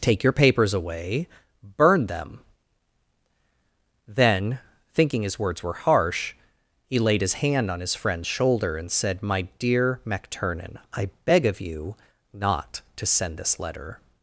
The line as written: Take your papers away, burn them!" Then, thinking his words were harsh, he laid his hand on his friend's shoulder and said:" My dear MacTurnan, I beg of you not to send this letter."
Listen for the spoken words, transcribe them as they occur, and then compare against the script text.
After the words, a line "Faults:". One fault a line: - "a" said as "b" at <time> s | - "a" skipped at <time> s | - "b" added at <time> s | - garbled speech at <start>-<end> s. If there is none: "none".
Take your papers away, burn them!" Then, thinking his words were harsh, he laid his hand on his friend's shoulder and said:" My dear MacTurnan, I beg of you not to send this letter."
Faults:
none